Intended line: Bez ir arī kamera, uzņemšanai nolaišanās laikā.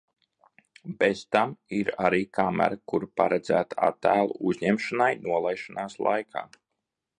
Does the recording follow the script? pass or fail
fail